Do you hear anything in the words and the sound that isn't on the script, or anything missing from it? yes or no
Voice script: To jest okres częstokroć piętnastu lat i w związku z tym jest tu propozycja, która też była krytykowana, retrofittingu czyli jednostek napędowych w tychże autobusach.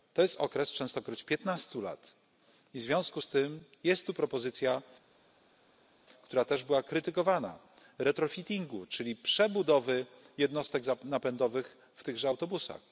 yes